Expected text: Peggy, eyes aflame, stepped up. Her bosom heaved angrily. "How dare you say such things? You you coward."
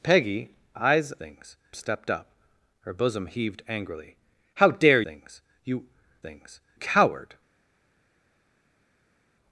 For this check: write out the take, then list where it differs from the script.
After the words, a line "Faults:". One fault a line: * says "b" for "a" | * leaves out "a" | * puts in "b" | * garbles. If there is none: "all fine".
Peggy, eyes things, stepped up. Her bosom heaved angrily. "How dare things? You things coward."
Faults:
* says "things" for "aflame"
* leaves out "you say such"
* says "things" for "you"